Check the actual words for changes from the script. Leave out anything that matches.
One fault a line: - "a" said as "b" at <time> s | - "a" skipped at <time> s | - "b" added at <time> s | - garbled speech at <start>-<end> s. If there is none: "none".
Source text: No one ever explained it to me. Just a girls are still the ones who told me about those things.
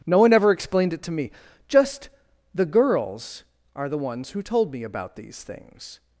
- "a" said as "the" at 2.5 s
- "still" skipped at 3.9 s
- "those" said as "these" at 5.2 s